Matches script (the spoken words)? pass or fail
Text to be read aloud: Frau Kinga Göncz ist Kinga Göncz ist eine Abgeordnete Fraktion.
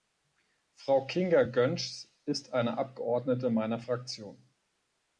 fail